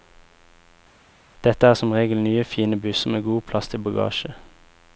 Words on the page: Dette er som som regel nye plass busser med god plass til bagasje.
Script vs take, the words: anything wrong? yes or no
yes